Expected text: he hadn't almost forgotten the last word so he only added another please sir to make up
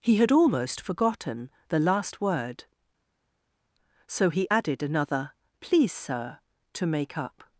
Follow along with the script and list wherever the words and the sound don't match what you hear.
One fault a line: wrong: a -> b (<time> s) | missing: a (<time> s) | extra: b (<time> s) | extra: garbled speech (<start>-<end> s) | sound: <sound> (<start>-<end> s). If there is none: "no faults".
wrong: hadn't -> had (0.2 s)
missing: only (4.5 s)